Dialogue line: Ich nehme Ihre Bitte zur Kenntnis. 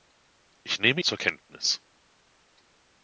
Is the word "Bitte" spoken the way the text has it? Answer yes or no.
no